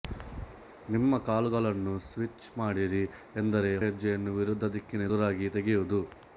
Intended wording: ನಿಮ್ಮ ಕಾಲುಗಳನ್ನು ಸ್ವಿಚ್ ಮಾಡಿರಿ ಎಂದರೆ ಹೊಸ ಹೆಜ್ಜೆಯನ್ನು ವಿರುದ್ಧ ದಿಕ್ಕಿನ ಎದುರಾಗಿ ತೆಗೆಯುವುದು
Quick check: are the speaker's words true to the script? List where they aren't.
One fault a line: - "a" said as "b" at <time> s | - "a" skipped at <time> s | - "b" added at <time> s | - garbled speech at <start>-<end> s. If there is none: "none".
- "ಹೊಸ" skipped at 3.7 s